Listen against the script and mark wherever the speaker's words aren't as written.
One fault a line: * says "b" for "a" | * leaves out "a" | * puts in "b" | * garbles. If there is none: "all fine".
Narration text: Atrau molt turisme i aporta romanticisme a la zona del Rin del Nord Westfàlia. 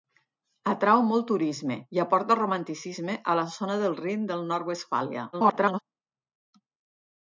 * garbles